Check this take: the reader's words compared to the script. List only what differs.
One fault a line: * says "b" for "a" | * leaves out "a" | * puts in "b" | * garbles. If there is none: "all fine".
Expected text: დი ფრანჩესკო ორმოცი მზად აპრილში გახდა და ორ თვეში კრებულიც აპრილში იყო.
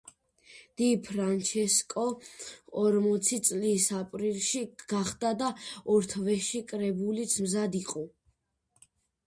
* says "წლის" for "მზად"
* says "მზად" for "აპრილში"